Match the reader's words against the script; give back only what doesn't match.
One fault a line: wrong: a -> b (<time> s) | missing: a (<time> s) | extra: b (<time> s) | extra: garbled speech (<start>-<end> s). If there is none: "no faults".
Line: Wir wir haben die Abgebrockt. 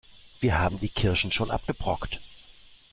missing: wir (0.6 s)
extra: Kirschen schon (0.9 s)